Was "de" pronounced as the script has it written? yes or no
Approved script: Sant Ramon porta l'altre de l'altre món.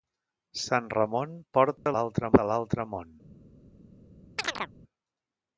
yes